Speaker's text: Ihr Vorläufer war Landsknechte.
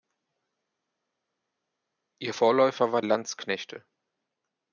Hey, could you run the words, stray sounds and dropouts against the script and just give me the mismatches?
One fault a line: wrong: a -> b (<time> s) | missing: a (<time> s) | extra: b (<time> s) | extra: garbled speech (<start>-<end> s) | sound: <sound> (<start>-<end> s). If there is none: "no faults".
no faults